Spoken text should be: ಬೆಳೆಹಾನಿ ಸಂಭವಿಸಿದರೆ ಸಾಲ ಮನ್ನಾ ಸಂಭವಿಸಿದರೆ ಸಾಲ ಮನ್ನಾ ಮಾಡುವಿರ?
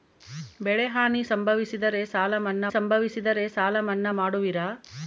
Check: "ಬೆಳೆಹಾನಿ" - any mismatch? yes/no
no